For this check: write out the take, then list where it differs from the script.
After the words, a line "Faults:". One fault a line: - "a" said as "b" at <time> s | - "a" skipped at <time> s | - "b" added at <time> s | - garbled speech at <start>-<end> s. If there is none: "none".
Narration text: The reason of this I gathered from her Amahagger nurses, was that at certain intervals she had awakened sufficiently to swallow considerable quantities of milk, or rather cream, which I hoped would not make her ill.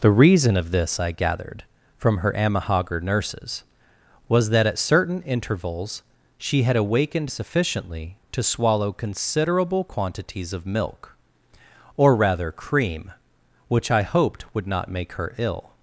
The reason of this I gathered from her Amahagger nurses, was that at certain intervals she had awakened sufficiently to swallow considerable quantities of milk, or rather cream, which I hoped would not make her ill.
Faults:
none